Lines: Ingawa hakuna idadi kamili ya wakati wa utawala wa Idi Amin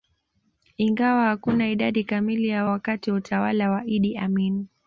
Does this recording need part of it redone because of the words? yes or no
no